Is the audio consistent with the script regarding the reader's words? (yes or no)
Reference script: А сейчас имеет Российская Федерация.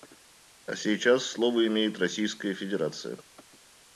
no